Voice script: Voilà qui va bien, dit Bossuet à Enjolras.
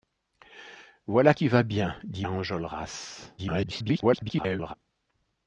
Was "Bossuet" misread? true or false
true